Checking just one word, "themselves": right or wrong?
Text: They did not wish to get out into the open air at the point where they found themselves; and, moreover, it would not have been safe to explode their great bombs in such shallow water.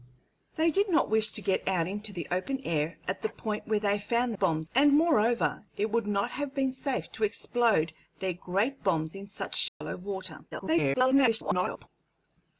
wrong